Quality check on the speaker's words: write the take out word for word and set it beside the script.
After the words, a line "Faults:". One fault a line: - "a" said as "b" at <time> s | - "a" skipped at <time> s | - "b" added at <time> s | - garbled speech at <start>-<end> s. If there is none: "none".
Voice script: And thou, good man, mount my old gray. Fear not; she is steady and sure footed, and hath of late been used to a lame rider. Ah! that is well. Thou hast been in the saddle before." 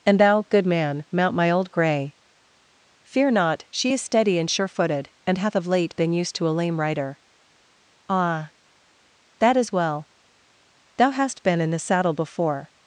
And thou, good man, mount my old gray. Fear not; she is steady and sure footed, and hath of late been used to a lame rider. Ah! that is well. Thou hast been in the saddle before."
Faults:
none